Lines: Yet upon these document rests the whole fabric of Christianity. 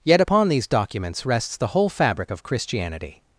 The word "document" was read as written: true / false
false